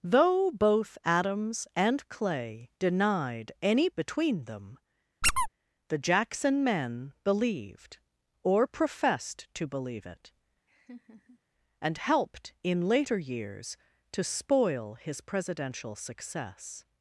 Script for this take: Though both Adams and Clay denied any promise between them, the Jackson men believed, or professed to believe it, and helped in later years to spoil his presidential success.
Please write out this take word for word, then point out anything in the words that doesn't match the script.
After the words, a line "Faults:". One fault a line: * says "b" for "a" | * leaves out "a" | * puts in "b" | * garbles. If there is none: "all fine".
Though both Adams and Clay denied any between them, the Jackson men believed, or professed to believe it, and helped in later years to spoil his presidential success.
Faults:
* leaves out "promise"